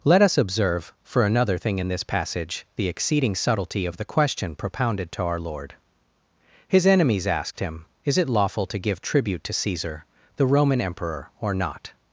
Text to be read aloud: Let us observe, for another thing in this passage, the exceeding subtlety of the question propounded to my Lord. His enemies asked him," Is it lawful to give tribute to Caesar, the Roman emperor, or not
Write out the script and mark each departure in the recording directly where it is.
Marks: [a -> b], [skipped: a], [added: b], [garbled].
Let us observe, for another thing in this passage, the exceeding subtlety of the question propounded to [my -> our] Lord. His enemies asked him," Is it lawful to give tribute to Caesar, the Roman emperor, or not